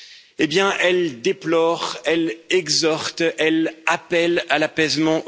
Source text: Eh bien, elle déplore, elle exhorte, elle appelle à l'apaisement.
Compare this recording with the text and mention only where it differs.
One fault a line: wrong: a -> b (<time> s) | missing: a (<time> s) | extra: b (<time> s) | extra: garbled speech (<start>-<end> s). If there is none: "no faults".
no faults